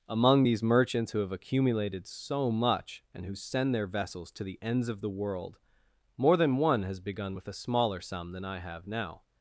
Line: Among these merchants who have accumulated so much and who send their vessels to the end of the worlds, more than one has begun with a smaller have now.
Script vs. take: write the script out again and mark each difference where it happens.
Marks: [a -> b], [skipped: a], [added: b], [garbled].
Among these merchants who have accumulated so much and who send their vessels to the [end -> ends] of the [worlds, -> world] more than one has begun with a smaller [added: sum than I] have now.